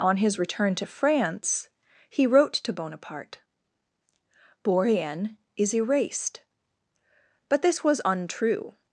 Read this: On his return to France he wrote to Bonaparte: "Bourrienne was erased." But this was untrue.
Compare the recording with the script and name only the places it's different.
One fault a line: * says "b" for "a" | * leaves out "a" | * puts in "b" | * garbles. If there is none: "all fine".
* says "is" for "was"